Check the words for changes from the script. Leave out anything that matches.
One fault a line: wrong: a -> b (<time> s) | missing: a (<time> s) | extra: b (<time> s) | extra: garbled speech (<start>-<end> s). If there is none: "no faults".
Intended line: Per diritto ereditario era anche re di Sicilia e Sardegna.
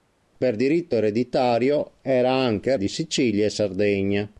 missing: re (2.7 s)